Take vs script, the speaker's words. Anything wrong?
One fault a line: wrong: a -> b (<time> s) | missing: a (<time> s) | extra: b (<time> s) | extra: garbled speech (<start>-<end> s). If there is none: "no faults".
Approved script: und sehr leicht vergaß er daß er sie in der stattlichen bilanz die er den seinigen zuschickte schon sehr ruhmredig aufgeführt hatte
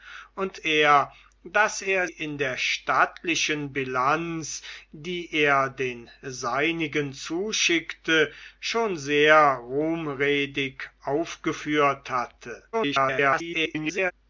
missing: sehr leicht vergaß (0.6 s)
missing: sie (2.1 s)
extra: garbled speech (12.7-14.1 s)